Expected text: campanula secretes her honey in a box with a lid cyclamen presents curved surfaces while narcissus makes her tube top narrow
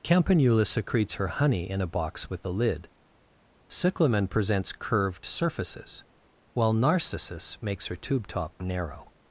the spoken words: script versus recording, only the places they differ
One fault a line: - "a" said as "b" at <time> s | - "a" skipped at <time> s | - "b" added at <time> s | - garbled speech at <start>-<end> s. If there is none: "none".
none